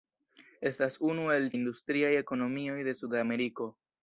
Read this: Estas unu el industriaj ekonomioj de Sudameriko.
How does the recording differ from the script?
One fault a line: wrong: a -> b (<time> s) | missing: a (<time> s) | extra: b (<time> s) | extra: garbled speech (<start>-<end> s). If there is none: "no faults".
no faults